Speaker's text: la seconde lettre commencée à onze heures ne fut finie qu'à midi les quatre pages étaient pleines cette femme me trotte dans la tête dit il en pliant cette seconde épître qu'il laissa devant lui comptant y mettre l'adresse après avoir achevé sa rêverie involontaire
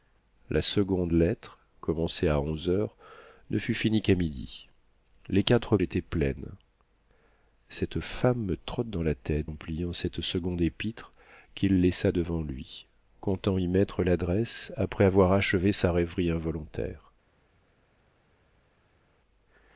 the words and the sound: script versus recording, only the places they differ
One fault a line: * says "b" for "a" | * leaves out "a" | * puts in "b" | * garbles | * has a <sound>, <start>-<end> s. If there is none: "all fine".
* leaves out "pages"
* leaves out "dit il"